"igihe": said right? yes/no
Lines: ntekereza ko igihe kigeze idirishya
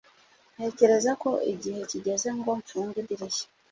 yes